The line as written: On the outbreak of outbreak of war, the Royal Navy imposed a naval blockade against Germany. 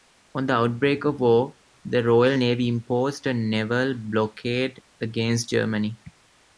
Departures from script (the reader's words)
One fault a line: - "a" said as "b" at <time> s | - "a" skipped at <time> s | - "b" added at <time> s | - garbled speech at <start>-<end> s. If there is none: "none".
- "outbreak of" skipped at 1.2 s